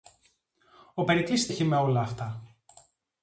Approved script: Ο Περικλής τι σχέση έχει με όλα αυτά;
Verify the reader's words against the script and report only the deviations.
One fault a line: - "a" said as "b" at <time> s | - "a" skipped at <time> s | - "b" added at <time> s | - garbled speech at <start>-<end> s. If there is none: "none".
- "τι σχέση" skipped at 1.5 s